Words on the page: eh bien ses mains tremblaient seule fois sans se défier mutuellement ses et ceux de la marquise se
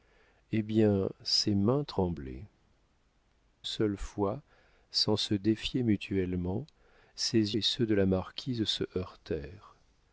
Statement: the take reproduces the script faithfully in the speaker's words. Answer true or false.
true